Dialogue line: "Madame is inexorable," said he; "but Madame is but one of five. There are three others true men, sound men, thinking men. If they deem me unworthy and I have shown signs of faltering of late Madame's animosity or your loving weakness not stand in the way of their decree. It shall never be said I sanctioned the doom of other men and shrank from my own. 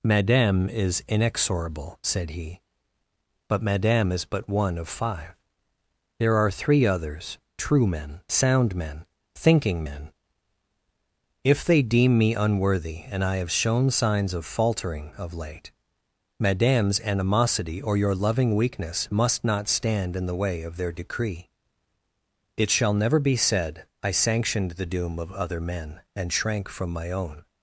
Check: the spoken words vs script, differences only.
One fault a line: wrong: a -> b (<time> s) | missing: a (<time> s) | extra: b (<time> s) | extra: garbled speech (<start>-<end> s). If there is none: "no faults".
extra: must (19.1 s)